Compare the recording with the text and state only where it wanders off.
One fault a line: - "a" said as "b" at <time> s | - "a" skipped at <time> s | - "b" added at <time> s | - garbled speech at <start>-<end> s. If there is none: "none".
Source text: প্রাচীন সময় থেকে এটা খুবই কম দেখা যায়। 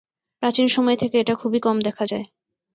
none